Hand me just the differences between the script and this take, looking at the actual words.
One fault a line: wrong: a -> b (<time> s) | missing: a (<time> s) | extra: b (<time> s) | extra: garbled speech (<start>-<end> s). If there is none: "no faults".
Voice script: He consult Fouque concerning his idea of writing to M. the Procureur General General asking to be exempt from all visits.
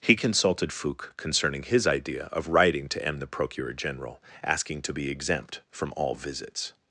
wrong: consult -> consulted (0.1 s)
missing: General (4.2 s)